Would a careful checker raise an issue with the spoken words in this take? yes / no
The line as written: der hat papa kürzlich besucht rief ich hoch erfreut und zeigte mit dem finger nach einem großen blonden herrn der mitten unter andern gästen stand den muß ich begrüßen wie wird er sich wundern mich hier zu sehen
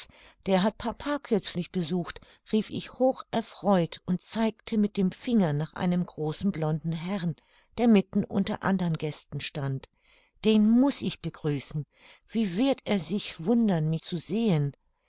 yes